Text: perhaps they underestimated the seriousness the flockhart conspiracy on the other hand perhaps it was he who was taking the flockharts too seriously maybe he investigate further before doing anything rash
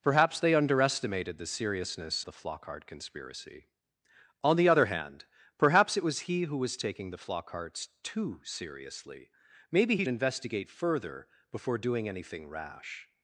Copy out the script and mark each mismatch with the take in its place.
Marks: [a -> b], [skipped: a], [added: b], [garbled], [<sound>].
perhaps they underestimated the seriousness the flockhart conspiracy on the other hand perhaps it was he who was taking the flockharts too seriously maybe he investigate further before doing anything rash